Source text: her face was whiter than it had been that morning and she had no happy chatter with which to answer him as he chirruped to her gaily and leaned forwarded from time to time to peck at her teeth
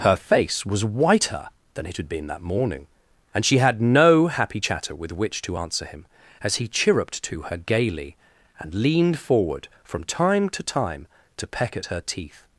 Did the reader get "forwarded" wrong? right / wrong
wrong